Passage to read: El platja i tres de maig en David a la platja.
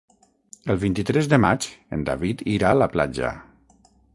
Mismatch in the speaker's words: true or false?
true